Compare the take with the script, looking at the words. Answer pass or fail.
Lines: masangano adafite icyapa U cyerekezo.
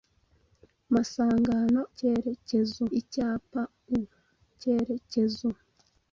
fail